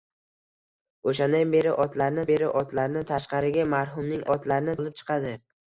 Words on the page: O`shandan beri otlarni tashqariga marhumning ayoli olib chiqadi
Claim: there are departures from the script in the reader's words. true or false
true